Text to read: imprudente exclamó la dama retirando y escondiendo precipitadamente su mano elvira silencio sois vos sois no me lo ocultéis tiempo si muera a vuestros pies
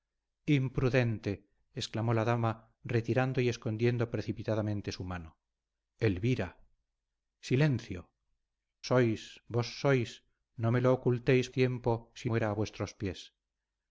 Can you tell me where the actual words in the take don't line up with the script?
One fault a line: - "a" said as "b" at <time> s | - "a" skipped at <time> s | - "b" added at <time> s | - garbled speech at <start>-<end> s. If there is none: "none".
none